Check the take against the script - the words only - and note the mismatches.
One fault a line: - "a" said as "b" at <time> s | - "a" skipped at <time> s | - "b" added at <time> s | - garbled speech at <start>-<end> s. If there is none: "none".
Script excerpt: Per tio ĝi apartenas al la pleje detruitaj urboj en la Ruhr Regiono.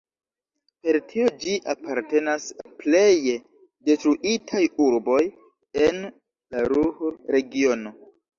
- "al" skipped at 2.5 s